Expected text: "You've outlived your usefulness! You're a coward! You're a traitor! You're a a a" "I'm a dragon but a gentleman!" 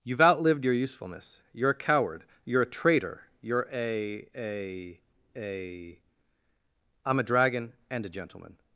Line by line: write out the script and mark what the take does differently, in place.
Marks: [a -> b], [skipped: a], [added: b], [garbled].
"You've outlived your usefulness! You're a coward! You're a traitor! You're a a a" "I'm a dragon [but -> and] a gentleman!"